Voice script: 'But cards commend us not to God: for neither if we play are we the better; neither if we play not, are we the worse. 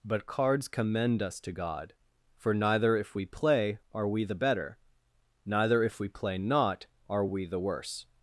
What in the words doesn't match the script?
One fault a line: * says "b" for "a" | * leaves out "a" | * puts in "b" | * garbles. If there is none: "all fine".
* leaves out "not"